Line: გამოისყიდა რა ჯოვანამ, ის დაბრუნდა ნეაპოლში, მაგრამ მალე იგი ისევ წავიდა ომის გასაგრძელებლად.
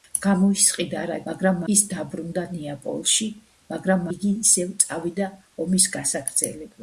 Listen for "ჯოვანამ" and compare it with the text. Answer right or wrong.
wrong